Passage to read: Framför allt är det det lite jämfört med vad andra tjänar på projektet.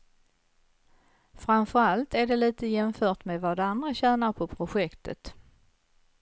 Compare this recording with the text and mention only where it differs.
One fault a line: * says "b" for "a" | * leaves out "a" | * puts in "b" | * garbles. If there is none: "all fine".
* leaves out "det"